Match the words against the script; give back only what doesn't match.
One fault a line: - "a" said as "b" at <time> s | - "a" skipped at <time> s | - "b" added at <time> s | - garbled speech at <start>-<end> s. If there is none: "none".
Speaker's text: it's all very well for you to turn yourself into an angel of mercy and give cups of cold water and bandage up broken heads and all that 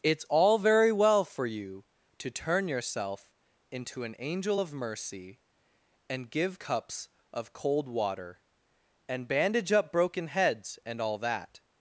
none